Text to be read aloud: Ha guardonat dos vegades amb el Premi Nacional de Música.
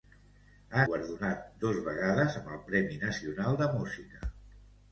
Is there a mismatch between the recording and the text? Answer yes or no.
no